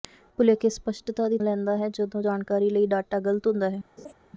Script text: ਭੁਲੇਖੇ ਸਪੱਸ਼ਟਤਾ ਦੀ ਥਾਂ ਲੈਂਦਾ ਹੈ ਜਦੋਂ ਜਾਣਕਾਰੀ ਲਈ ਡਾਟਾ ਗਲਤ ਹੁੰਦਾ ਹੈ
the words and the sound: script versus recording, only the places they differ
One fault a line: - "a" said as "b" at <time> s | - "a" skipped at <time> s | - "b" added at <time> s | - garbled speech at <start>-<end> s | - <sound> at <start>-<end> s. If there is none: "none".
- "ਥਾਂ" skipped at 1.4 s
- laugh at 4.0-4.1 s